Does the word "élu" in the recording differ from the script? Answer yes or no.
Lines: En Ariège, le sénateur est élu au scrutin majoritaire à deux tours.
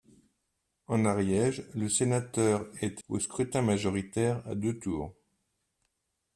yes